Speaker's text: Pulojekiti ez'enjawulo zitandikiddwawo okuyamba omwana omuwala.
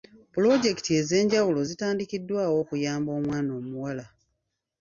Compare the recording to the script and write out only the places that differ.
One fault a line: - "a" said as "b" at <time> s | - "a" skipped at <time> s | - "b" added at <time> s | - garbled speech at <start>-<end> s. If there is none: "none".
none